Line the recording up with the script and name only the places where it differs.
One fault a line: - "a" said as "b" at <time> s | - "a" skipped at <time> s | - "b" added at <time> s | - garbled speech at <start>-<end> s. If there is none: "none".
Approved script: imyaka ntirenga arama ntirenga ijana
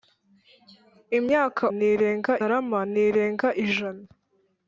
none